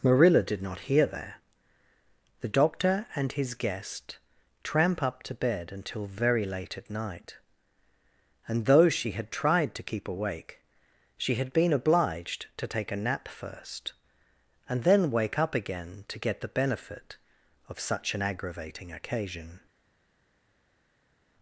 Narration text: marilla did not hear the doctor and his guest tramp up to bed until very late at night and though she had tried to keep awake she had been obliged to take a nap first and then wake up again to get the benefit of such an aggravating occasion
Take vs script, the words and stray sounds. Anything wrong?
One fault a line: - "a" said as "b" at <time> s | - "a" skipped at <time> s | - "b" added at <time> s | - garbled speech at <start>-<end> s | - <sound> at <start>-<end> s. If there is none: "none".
- "there" added at 1.1 s